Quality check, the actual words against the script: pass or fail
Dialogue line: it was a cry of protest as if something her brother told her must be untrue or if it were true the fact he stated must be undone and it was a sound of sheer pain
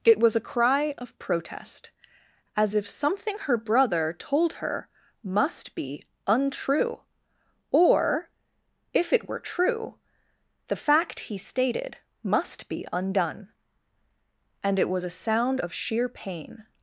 pass